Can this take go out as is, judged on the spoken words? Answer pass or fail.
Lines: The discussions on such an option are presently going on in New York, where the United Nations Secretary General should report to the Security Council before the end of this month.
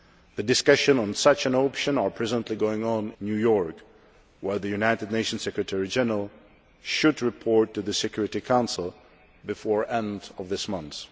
fail